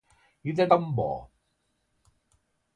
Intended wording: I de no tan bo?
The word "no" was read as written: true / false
false